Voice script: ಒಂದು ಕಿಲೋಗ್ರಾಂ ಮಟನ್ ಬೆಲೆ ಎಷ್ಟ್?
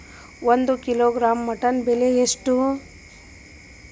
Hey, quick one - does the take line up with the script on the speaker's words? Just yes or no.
yes